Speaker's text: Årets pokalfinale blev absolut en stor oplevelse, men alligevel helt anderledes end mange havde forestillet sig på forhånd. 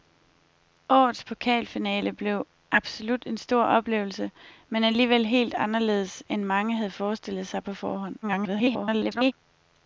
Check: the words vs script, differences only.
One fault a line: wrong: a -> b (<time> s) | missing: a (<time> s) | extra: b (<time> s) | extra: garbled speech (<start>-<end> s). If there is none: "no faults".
extra: garbled speech (8.2-9.3 s)